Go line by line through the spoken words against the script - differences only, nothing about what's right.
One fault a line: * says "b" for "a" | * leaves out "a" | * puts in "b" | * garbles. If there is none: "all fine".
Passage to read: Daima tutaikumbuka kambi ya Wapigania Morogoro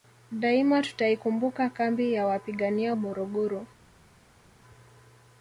all fine